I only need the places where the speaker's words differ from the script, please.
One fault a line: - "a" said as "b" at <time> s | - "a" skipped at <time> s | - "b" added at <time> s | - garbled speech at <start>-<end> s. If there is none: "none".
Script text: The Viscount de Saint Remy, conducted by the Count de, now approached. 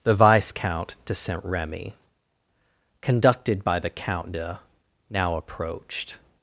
none